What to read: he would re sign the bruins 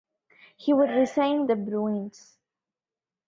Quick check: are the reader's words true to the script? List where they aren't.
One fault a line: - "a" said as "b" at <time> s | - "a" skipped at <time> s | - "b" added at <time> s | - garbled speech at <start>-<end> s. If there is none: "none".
none